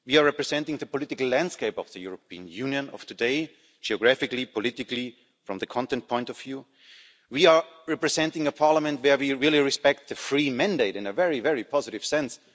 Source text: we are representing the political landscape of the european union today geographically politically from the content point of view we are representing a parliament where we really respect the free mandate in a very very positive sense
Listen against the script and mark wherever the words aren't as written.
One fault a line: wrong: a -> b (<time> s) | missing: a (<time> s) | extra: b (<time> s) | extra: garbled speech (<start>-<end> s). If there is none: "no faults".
extra: of (2.9 s)